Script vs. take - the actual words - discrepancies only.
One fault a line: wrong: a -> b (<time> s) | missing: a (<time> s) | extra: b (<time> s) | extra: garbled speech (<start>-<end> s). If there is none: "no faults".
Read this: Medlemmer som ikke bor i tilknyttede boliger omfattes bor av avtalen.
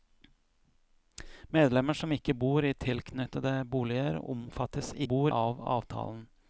no faults